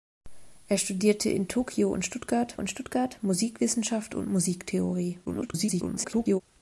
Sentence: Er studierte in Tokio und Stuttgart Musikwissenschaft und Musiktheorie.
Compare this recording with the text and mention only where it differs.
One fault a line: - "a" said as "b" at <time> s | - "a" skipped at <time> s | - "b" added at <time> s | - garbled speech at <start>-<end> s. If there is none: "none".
- "und Stuttgart" added at 2.6 s
- garbled speech at 5.3-6.4 s